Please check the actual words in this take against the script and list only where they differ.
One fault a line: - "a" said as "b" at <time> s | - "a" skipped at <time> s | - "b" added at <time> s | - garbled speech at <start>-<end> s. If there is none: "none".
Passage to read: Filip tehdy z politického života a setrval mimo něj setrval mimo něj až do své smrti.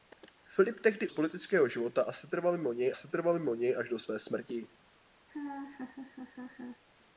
none